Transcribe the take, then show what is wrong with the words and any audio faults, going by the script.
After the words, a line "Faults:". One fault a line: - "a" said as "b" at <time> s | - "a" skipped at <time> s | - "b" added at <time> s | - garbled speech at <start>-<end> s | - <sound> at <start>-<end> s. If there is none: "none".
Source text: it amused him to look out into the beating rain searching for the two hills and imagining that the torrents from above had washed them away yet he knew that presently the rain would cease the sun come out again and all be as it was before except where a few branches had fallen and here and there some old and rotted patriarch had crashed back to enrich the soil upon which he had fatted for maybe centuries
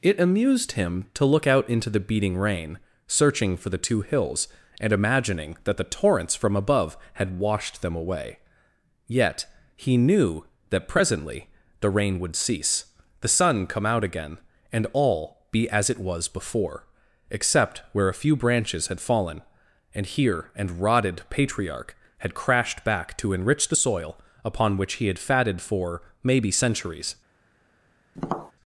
it amused him to look out into the beating rain searching for the two hills and imagining that the torrents from above had washed them away yet he knew that presently the rain would cease the sun come out again and all be as it was before except where a few branches had fallen and here and rotted patriarch had crashed back to enrich the soil upon which he had fatted for maybe centuries
Faults:
- "there some old and" skipped at 20.8 s
- tap at 28.1-28.5 s